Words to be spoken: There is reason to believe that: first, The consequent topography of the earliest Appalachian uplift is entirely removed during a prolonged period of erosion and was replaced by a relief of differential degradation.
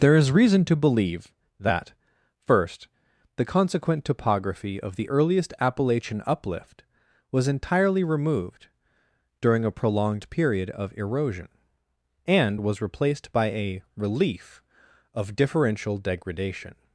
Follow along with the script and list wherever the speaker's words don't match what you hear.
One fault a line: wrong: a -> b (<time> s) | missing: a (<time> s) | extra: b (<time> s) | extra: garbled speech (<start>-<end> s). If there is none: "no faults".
wrong: is -> was (7.3 s)